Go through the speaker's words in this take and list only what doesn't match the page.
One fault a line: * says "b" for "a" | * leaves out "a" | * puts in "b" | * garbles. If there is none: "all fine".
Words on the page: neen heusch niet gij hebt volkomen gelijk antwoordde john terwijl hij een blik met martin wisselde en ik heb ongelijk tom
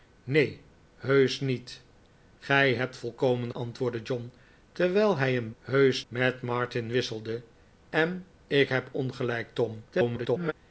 * leaves out "gelijk"
* says "heusch" for "blik"
* garbles